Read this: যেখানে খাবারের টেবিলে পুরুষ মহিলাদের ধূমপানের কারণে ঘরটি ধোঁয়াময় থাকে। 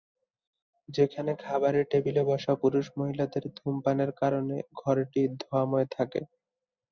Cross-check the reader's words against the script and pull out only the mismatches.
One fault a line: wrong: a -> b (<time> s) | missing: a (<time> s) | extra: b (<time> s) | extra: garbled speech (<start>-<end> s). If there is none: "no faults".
extra: বসা (2.3 s)